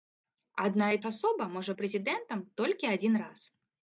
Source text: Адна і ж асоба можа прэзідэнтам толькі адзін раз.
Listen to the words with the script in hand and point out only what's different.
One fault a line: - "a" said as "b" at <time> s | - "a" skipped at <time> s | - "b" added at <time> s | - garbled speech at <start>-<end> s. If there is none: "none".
none